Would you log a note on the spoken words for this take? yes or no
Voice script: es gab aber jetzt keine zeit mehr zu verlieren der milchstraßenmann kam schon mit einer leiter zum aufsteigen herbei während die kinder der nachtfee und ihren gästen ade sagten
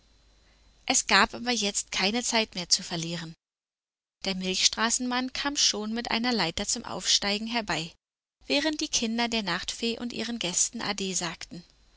no